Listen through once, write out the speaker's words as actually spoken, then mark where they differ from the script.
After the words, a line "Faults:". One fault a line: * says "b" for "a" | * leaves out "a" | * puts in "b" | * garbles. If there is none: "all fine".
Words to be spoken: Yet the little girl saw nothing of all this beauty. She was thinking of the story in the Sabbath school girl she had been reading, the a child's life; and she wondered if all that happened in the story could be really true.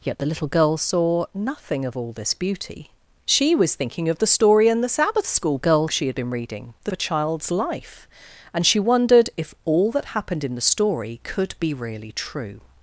Yet the little girl saw nothing of all this beauty. She was thinking of the story in the Sabbath school girl she had been reading, the a child's life; and she wondered if all that happened in the story could be really true.
Faults:
all fine